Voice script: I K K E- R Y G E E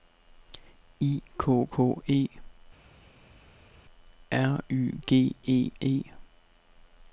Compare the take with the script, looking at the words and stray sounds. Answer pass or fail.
pass